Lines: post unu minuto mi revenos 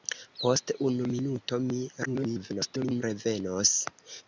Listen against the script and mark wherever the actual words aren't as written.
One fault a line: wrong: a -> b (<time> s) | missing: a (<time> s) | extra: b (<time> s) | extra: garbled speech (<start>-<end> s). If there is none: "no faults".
extra: garbled speech (2.1-3.0 s)